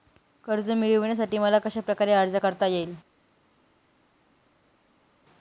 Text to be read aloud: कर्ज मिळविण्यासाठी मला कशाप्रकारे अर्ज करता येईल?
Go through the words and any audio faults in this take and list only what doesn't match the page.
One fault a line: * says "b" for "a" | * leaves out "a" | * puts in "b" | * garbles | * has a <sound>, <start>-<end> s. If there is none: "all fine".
all fine